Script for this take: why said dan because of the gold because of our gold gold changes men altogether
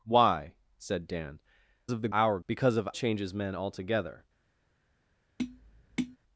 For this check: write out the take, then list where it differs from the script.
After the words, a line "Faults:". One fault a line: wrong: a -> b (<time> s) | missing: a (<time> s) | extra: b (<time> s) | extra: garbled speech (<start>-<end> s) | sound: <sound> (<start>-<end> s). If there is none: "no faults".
why said dan of the our because of changes men altogether
Faults:
missing: because (1.4 s)
wrong: gold -> our (2.1 s)
missing: our gold gold (2.9 s)
sound: tap (5.4-6.2 s)